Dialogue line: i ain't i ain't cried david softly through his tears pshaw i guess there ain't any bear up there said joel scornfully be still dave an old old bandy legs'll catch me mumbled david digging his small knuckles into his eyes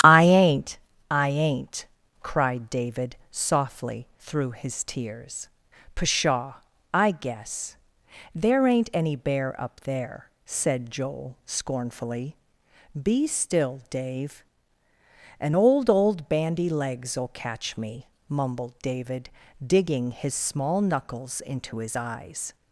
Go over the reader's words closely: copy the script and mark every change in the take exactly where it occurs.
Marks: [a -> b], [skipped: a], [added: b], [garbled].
i ain't i ain't cried david softly through his tears pshaw i guess there ain't any bear up there said joel scornfully be still dave an old old bandy legs'll catch me mumbled david digging his small knuckles into his eyes